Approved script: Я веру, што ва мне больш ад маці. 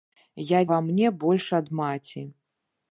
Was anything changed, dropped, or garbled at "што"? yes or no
yes